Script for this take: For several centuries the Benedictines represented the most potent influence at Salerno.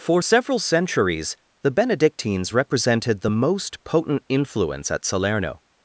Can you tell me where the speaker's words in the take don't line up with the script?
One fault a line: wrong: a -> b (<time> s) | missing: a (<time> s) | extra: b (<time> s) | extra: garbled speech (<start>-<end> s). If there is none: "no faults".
no faults